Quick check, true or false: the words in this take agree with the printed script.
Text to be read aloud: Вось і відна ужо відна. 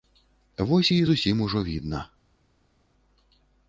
false